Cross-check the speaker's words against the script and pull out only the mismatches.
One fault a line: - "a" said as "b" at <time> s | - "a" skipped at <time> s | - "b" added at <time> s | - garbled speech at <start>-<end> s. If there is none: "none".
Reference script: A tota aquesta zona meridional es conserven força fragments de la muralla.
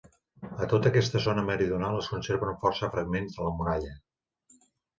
none